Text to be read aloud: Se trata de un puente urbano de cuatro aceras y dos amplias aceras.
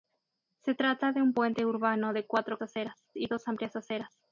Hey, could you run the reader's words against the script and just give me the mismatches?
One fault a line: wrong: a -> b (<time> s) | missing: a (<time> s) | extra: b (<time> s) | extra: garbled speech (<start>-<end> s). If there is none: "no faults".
no faults